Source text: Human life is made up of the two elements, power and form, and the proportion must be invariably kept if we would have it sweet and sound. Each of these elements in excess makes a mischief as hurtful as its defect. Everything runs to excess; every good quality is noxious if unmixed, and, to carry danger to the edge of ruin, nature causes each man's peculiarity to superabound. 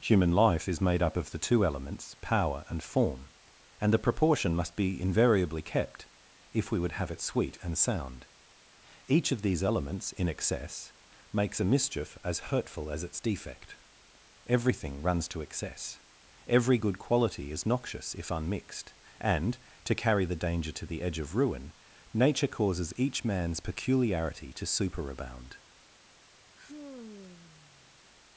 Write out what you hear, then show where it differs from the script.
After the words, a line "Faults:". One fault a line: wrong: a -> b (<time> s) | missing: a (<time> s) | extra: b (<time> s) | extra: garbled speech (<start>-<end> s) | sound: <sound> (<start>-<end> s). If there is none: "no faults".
Human life is made up of the two elements, power and form, and the proportion must be invariably kept if we would have it sweet and sound. Each of these elements in excess makes a mischief as hurtful as its defect. Everything runs to excess; every good quality is noxious if unmixed, and, to carry the danger to the edge of ruin, nature causes each man's peculiarity to superabound.
Faults:
extra: the (20.3 s)
sound: sigh (26.6-28.0 s)